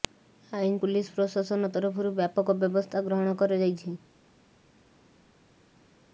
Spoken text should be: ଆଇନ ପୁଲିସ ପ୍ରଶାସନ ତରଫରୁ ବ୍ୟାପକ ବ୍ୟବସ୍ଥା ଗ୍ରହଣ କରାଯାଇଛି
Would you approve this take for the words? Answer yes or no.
yes